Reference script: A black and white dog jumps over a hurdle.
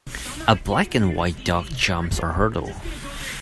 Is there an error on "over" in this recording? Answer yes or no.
yes